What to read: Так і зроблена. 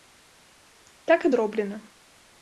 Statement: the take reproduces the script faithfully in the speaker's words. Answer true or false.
true